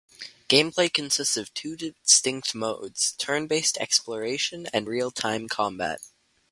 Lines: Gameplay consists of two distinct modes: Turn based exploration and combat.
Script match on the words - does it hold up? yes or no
no